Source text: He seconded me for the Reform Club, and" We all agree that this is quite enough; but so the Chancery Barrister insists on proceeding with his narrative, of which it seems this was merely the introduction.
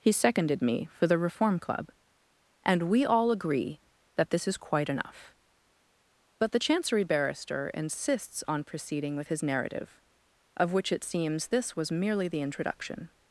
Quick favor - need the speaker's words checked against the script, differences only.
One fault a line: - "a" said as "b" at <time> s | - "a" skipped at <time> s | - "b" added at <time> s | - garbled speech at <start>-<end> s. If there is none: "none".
- "so" skipped at 6.5 s